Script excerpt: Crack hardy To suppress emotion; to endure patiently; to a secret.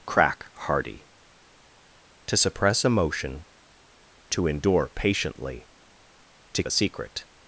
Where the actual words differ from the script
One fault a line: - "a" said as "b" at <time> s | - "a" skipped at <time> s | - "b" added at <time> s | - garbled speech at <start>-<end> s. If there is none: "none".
none